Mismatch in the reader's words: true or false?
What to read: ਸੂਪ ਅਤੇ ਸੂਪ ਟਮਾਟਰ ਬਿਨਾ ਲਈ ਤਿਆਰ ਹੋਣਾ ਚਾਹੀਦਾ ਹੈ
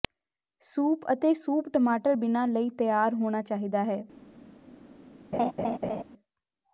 false